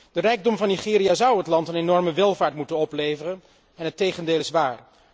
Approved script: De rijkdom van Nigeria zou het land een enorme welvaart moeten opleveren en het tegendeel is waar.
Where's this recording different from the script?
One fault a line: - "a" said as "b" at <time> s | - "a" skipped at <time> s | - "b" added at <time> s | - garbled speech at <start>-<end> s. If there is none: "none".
none